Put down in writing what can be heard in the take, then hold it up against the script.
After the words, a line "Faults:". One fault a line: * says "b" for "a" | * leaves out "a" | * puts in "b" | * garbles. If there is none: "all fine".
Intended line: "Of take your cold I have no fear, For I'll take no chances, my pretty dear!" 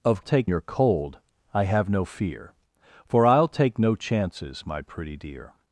"Of take your cold I have no fear, For I'll take no chances, my pretty dear!"
Faults:
all fine